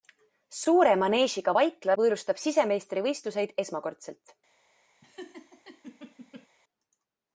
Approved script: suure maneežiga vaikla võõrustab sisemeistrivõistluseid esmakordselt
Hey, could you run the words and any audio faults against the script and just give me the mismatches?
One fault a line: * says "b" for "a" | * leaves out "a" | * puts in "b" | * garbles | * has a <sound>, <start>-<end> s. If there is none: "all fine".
* has a laugh, 5.0-6.5 s